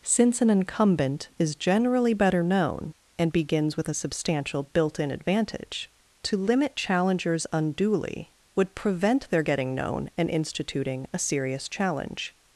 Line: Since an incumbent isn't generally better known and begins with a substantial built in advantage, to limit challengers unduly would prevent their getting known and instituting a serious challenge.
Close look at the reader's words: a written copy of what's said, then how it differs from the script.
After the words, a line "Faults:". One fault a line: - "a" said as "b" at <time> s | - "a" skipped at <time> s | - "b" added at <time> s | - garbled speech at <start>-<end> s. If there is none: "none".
Since an incumbent is generally better known and begins with a substantial built in advantage, to limit challengers unduly would prevent their getting known and instituting a serious challenge.
Faults:
- "isn't" said as "is" at 1.4 s